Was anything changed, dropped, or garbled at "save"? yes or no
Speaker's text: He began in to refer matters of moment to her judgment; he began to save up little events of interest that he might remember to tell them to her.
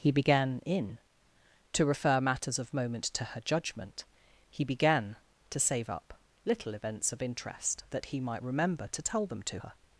no